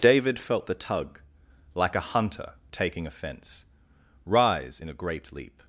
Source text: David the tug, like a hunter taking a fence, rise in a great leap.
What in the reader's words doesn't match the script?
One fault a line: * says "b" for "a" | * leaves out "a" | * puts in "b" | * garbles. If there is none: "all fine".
* puts in "felt"